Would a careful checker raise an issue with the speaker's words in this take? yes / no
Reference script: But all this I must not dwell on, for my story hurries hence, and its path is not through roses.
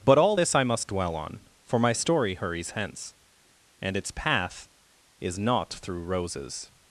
yes